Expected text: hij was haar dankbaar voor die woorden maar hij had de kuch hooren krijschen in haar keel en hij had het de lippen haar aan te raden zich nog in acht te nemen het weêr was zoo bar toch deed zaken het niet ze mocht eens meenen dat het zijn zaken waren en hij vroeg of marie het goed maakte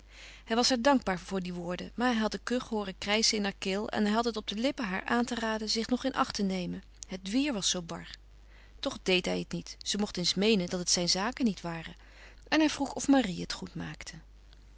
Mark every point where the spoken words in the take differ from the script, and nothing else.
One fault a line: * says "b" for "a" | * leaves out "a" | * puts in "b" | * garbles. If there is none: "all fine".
* puts in "op"
* says "hij" for "zaken"
* puts in "niet"